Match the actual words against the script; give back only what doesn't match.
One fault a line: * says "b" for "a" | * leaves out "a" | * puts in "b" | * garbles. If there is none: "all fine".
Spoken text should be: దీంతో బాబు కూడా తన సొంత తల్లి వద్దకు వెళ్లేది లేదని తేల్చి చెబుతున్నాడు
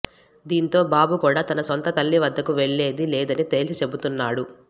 all fine